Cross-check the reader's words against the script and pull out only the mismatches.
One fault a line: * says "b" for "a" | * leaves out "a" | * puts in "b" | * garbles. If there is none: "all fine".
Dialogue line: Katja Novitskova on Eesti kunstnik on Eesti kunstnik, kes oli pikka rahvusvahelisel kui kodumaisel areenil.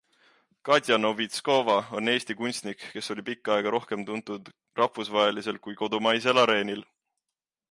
* says "kes oli pikka aega rohkem tuntud" for "on Eesti kunstnik kes oli pikka"